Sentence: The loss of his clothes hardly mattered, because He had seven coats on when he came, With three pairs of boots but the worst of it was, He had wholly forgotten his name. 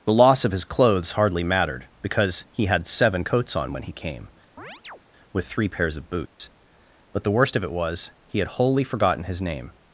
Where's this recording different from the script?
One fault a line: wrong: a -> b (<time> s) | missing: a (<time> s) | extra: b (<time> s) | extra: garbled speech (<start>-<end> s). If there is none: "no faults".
no faults